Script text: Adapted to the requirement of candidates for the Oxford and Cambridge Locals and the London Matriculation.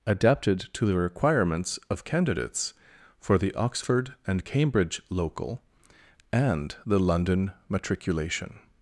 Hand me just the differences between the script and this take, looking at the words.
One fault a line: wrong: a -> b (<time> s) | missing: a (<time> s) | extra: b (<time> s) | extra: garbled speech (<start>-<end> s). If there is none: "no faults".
wrong: requirement -> requirements (1.0 s)
wrong: Locals -> Local (5.1 s)